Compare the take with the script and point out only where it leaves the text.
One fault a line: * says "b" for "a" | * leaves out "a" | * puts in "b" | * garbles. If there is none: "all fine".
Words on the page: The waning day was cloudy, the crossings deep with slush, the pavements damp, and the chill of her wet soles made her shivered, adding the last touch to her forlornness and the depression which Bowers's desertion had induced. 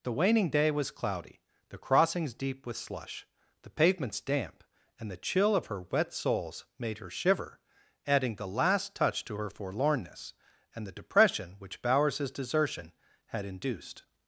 * says "shiver" for "shivered"